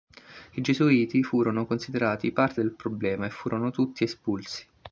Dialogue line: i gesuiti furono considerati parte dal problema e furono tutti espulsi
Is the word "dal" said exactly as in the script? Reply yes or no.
no